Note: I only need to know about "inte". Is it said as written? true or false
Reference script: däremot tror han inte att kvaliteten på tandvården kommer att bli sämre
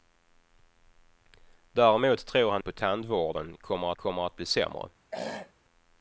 false